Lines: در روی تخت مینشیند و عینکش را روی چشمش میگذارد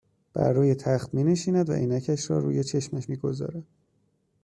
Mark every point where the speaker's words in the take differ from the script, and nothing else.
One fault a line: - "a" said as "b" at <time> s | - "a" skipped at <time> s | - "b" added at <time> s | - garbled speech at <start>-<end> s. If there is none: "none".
- "در" said as "بر" at 0.3 s